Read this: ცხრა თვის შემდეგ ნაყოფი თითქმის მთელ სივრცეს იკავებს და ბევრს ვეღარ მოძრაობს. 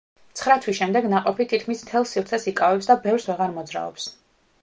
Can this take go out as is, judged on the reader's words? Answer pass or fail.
pass